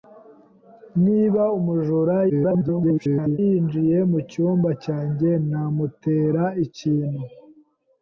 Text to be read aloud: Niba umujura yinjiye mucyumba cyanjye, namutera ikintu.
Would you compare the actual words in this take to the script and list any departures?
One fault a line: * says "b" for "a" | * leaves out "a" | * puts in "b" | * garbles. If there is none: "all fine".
* garbles